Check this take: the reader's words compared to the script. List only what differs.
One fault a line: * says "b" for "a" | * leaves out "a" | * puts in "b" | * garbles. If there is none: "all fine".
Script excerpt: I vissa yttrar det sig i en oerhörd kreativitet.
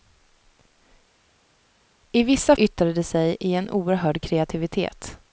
all fine